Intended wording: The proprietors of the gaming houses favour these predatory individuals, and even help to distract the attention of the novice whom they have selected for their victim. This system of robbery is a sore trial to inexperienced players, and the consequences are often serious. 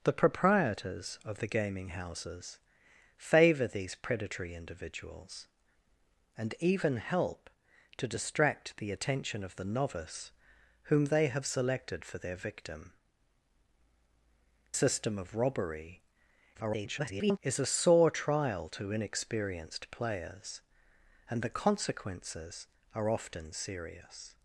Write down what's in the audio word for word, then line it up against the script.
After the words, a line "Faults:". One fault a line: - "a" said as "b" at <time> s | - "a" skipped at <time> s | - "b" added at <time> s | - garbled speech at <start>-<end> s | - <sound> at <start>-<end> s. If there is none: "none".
The proprietors of the gaming houses favour these predatory individuals, and even help to distract the attention of the novice whom they have selected for their victim. System of robbery [garbled] is a sore trial to inexperienced players, and the consequences are often serious.
Faults:
- "This" skipped at 12.9 s
- garbled speech at 16.5-17.4 s